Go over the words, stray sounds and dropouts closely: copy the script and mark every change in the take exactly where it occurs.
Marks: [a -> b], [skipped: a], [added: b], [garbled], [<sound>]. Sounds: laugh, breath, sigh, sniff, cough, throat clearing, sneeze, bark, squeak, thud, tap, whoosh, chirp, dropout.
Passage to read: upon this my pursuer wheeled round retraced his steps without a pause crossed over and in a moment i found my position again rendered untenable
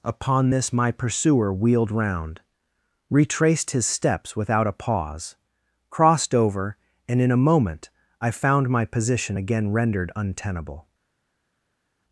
upon this my pursuer wheeled round retraced his steps without a pause crossed over and in a moment i found my position again rendered untenable